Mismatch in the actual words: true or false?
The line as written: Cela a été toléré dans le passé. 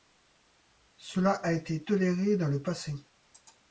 false